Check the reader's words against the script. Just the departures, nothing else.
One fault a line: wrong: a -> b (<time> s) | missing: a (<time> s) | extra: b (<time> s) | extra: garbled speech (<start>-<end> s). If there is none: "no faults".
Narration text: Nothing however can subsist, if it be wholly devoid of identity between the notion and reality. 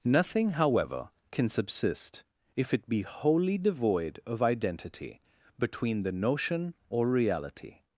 wrong: and -> or (6.9 s)